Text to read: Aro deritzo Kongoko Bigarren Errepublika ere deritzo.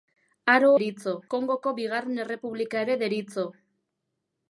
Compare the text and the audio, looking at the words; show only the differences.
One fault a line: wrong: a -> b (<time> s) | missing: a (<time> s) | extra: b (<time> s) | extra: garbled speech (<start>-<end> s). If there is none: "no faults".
no faults